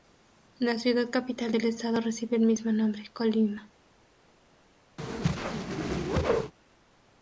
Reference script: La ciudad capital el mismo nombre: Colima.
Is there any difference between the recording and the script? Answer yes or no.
yes